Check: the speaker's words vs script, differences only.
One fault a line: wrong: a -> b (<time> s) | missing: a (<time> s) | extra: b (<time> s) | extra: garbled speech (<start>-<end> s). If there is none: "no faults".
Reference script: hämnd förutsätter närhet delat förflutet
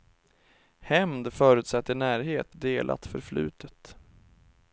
no faults